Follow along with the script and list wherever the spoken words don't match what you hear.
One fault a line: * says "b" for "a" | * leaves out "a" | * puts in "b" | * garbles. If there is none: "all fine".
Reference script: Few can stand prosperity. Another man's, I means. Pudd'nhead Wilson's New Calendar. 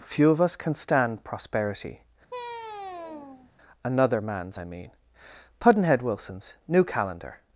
* puts in "of us"
* says "mean" for "means"